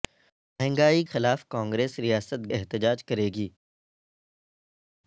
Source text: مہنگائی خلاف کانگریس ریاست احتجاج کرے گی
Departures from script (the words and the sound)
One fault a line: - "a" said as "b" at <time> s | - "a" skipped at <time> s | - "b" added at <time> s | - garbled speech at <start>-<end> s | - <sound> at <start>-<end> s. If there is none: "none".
none